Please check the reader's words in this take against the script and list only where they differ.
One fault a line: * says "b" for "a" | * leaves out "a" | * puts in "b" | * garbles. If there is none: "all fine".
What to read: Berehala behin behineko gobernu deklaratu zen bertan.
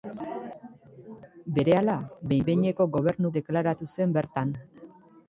all fine